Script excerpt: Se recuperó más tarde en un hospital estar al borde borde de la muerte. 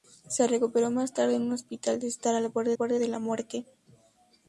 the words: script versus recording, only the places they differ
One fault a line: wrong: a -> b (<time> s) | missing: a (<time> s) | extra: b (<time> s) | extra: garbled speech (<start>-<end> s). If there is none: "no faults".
no faults